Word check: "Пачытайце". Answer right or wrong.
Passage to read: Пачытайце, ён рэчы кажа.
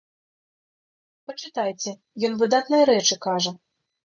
right